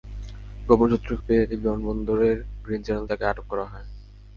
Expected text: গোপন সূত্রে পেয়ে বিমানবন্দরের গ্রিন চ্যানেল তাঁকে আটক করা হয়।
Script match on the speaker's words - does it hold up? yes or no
yes